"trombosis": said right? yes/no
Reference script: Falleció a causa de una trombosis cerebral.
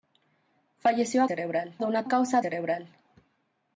no